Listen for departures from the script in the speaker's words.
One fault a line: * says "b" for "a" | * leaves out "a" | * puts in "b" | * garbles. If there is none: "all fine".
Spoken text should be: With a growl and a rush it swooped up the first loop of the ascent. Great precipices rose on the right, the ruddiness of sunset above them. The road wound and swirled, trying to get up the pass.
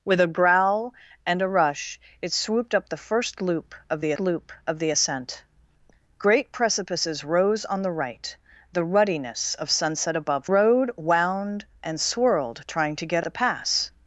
* puts in "loop of the"
* leaves out "them The"
* leaves out "up"